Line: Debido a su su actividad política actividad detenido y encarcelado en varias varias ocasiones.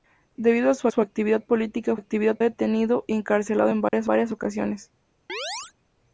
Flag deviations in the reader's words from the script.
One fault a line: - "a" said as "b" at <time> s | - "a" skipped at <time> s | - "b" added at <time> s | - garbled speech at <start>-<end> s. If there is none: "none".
none